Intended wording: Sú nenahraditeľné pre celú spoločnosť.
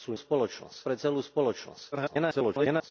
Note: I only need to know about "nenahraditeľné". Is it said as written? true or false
false